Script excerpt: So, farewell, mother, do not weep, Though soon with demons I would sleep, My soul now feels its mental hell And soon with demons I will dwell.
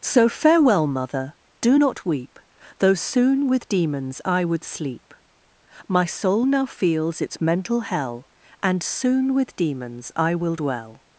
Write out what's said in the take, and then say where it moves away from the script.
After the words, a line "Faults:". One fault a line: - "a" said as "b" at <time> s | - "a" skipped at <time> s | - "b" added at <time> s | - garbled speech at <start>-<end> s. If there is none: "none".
So, farewell, mother, do not weep, Though soon with demons I would sleep, My soul now feels its mental hell And soon with demons I will dwell.
Faults:
none